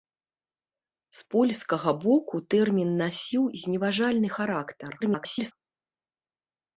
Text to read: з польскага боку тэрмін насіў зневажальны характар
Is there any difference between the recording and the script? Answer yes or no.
yes